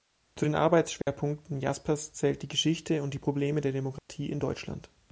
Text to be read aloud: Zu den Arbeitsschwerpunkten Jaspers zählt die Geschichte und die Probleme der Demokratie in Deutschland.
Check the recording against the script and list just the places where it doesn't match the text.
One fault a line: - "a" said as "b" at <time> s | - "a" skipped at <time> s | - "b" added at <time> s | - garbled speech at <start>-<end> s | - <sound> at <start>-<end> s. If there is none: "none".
- dropout at 1.0-1.1 s
- dropout at 4.0-4.1 s